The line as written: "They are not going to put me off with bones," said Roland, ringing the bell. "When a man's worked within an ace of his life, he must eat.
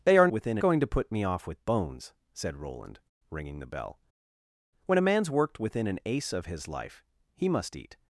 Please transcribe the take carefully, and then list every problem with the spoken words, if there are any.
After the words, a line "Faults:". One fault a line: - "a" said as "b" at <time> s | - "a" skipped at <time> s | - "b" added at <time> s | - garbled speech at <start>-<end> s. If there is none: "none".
"They are within going to put me off with bones," said Roland, ringing the bell. "When a man's worked within an ace of his life, he must eat.
Faults:
- "not" said as "within" at 0.3 s